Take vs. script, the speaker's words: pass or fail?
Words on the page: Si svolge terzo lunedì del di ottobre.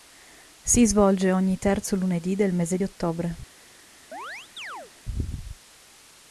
fail